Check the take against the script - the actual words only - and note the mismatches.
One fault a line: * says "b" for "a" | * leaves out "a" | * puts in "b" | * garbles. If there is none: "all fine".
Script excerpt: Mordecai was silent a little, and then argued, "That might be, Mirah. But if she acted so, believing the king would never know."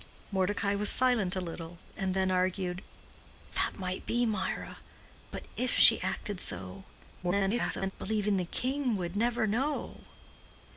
* garbles